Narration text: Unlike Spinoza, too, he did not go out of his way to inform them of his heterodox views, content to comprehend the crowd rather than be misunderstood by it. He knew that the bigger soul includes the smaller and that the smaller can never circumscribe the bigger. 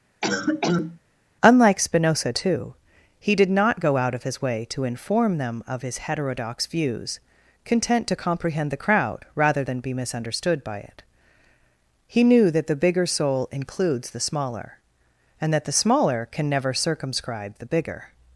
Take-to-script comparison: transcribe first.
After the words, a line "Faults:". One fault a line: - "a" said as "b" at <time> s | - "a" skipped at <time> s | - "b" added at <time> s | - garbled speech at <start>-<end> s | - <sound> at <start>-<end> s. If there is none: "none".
Unlike Spinoza, too, he did not go out of his way to inform them of his heterodox views, content to comprehend the crowd rather than be misunderstood by it. He knew that the bigger soul includes the smaller and that the smaller can never circumscribe the bigger.
Faults:
- cough at 0.2-1.0 s